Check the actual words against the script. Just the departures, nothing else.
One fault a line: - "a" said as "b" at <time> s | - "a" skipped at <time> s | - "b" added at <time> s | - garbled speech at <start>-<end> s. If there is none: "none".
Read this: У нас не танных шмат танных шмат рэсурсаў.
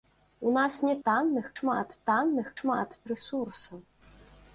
none